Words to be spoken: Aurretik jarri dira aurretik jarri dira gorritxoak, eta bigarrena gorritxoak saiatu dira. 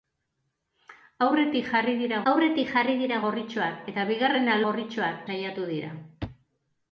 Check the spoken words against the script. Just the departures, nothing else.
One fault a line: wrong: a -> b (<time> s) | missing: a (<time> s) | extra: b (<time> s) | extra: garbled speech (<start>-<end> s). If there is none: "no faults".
no faults